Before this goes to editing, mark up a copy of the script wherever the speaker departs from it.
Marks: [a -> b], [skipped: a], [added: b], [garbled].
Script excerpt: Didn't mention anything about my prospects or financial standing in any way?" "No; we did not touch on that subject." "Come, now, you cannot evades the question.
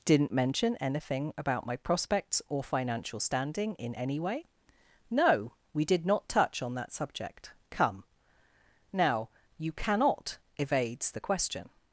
Didn't mention anything about my prospects or financial standing in any way?" "No; we did not touch on that subject." "Come, now, you cannot evades the question.